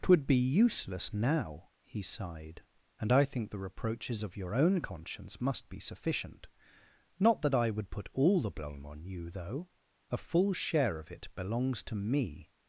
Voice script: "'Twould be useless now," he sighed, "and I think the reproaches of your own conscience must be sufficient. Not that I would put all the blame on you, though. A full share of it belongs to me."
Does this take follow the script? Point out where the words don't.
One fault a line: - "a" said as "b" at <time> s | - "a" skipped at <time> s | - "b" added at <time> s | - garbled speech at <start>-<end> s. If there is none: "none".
none